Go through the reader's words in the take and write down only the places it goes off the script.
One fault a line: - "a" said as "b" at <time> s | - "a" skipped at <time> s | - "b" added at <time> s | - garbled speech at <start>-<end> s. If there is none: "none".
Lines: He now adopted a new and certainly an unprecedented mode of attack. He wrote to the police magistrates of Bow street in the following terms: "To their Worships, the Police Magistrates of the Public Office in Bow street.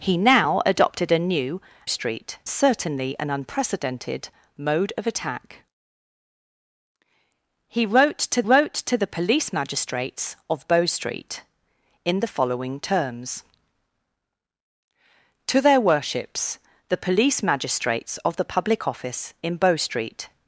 - "and" said as "street" at 1.8 s
- "wrote to" added at 8.4 s